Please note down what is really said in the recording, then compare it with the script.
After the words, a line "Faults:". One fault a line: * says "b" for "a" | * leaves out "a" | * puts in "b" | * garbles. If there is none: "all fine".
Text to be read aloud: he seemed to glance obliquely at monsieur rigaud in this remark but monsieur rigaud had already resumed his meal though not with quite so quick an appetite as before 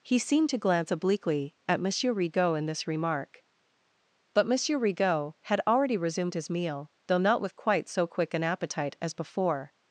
he seemed to glance obliquely at monsieur rigaud in this remark but monsieur rigaud had already resumed his meal though not with quite so quick an appetite as before
Faults:
all fine